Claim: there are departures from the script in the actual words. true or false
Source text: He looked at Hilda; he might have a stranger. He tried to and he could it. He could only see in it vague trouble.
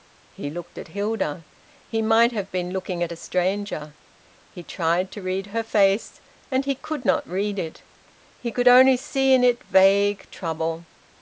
true